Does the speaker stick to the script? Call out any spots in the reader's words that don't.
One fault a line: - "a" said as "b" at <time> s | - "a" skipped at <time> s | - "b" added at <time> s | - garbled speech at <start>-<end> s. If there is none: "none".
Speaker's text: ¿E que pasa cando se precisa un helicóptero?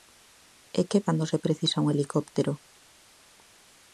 - "pasa" skipped at 1.0 s